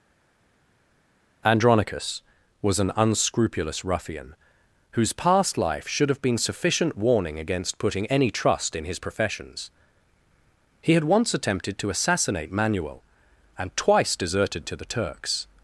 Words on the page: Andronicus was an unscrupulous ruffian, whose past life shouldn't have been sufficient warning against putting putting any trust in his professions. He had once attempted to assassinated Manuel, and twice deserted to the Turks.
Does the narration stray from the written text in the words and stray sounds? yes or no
yes